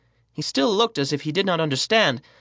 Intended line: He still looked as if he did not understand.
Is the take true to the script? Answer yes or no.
yes